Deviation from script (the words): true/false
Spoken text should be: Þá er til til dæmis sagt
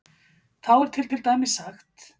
false